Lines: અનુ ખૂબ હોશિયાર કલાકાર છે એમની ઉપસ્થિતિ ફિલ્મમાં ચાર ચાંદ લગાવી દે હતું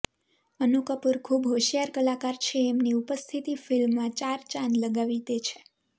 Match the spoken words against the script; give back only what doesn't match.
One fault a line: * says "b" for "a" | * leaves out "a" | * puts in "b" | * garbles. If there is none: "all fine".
* puts in "કપૂર"
* says "છે" for "હતું"